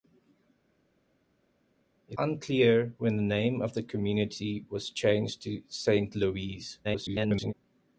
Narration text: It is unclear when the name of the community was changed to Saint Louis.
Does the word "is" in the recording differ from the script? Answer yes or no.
yes